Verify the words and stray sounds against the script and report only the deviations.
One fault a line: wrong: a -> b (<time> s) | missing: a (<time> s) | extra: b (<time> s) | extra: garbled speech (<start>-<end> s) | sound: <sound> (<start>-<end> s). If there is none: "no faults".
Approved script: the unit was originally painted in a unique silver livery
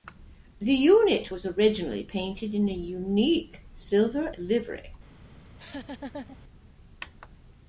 sound: laugh (5.4-6.4 s)